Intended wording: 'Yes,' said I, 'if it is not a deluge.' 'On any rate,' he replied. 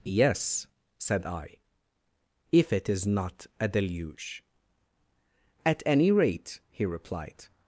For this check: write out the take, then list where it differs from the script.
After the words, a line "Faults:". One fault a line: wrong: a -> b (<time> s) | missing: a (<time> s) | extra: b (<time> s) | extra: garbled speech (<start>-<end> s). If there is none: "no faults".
'Yes,' said I, 'if it is not a deluge.' 'At any rate,' he replied.
Faults:
wrong: On -> At (5.6 s)